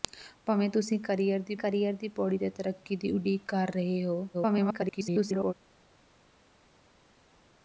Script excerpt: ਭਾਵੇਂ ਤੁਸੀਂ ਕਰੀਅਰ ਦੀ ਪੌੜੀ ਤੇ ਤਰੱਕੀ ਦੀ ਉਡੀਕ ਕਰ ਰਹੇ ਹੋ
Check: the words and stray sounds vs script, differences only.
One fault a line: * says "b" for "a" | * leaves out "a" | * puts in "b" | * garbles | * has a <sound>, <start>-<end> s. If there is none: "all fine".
* puts in "ਕਰੀਅਰ ਦੀ"
* garbles